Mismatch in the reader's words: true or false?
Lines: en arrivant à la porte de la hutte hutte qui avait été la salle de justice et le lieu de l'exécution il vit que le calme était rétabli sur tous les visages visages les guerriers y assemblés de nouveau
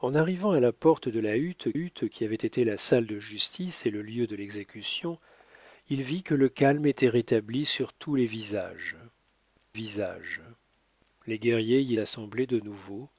false